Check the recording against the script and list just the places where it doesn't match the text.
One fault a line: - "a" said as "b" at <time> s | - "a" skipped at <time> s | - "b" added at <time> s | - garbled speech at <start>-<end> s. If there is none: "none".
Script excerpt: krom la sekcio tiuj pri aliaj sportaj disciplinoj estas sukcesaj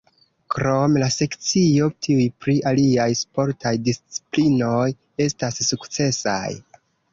none